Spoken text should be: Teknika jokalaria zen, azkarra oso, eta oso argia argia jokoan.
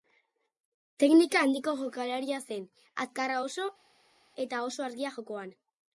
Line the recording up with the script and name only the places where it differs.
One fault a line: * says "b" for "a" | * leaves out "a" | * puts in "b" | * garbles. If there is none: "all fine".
* puts in "handiko"
* leaves out "argia"